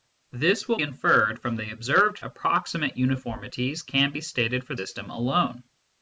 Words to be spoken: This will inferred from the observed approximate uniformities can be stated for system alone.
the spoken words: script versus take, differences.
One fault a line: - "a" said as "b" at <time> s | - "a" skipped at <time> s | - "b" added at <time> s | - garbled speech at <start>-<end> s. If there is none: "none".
none